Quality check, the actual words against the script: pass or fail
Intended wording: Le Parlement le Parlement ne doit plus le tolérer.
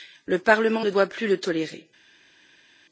fail